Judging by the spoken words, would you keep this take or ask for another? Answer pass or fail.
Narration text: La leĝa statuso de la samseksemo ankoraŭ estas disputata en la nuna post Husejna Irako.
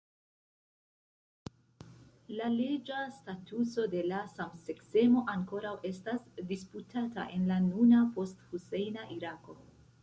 pass